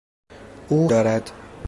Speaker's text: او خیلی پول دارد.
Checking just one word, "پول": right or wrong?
wrong